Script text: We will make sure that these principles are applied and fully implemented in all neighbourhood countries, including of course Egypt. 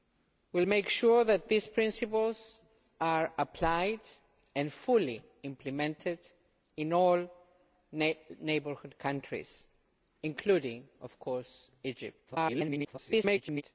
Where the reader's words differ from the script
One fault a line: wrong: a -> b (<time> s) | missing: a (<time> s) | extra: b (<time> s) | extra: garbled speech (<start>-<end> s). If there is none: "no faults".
extra: garbled speech (12.3-13.6 s)